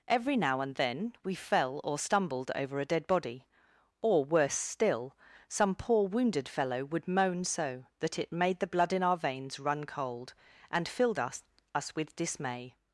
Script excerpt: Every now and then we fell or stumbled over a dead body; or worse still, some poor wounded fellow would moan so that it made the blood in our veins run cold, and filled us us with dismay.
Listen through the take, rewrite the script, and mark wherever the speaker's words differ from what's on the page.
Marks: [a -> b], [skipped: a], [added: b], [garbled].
Every now and then we fell or stumbled over a dead body; or worse still, some poor wounded fellow would moan so that it made the blood in our veins run cold, and filled us us with dismay.